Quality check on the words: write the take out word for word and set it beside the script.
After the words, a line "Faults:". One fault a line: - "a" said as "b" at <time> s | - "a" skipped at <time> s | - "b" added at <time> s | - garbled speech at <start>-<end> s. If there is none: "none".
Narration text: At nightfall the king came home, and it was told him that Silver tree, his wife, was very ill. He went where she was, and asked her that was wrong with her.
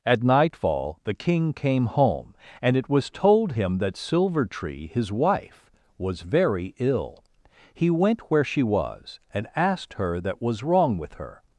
At nightfall the king came home, and it was told him that Silver tree, his wife, was very ill. He went where she was, and asked her that was wrong with her.
Faults:
none